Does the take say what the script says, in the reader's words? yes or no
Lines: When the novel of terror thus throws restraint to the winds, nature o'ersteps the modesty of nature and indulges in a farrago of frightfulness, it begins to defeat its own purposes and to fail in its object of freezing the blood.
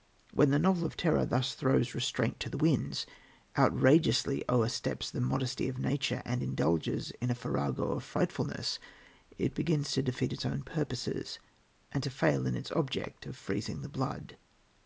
no